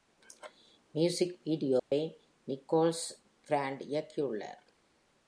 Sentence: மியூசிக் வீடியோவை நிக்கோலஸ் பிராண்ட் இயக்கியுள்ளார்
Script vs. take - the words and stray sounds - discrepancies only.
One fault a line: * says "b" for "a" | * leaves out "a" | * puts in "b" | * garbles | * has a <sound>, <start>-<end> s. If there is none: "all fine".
* has a dropout, 1.8-1.9 s